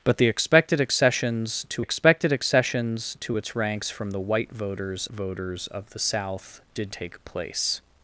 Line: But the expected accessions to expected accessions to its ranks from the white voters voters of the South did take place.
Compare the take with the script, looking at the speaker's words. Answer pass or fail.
pass